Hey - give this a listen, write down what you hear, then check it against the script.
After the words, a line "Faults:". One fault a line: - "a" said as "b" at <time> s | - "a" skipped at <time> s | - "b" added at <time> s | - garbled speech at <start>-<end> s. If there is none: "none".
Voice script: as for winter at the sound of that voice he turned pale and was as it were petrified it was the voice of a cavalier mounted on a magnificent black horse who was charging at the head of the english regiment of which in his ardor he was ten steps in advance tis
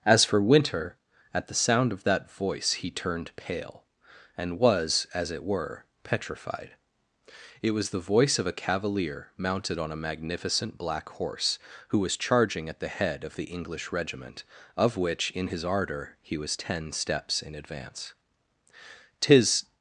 as for winter at the sound of that voice he turned pale and was as it were petrified it was the voice of a cavalier mounted on a magnificent black horse who was charging at the head of the english regiment of which in his ardor he was ten steps in advance tis
Faults:
none